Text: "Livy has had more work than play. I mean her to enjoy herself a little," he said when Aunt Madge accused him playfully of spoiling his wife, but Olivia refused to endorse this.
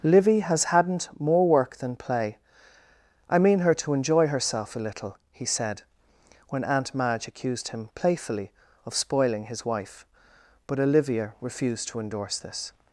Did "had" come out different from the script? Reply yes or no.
yes